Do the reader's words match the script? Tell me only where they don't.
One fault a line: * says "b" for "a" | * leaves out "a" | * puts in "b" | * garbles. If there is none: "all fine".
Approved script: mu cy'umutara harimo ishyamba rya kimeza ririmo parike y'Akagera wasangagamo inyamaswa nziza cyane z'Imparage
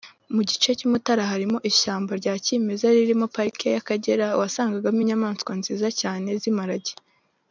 * puts in "gice"